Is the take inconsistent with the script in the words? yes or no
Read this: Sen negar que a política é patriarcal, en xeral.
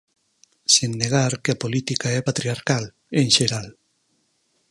no